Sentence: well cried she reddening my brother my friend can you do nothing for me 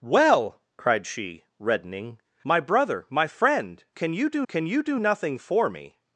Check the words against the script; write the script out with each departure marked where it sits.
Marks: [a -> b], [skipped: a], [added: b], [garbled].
well cried she reddening my brother my friend can you do [added: can you do] nothing for me